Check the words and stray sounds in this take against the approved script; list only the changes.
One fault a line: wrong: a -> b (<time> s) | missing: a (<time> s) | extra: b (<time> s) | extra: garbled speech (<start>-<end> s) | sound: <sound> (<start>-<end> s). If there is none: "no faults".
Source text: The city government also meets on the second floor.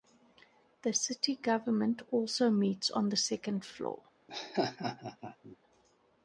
sound: laugh (4.3-5.6 s)